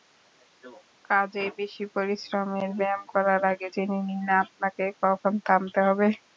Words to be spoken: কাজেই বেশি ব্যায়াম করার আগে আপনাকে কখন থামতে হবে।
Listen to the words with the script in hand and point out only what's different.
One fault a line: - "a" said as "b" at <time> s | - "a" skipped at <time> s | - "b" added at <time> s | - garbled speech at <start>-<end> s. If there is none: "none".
- "পরিশ্রমের" added at 1.9 s
- "জেনে নিন" added at 3.7 s